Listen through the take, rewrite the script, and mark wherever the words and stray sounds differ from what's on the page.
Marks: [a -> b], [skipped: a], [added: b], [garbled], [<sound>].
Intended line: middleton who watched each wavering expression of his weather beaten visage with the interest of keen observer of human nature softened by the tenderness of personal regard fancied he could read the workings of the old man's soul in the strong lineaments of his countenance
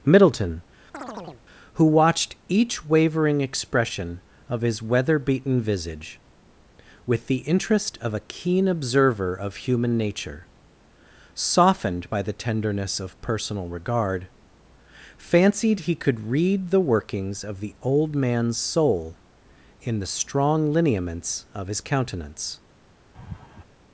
middleton [chirp] who watched each wavering expression of his weather beaten visage with the interest of [added: a] keen observer of human nature softened by the tenderness of personal regard fancied he could read the workings of the old man's soul in the strong lineaments of his countenance [laugh]